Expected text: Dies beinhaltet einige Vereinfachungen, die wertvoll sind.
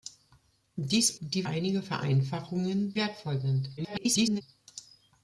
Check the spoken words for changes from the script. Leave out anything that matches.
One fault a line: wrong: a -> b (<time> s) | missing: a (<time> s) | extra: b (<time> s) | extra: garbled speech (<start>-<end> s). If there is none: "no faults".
wrong: beinhaltet -> die (1.2 s)
missing: die (3.0 s)
extra: garbled speech (3.8-4.4 s)